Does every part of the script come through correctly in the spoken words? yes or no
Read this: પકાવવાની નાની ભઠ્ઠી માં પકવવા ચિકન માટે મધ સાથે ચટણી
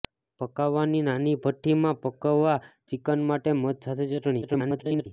no